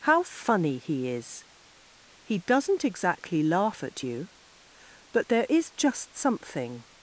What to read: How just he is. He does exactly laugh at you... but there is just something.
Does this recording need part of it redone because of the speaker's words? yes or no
yes